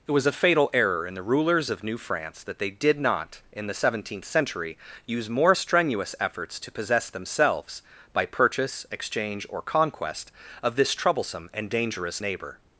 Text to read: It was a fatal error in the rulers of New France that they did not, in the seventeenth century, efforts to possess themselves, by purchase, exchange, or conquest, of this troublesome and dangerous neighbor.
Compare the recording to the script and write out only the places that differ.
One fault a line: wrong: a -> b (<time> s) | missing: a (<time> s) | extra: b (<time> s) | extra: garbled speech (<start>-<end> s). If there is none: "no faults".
extra: use more strenuous (5.0 s)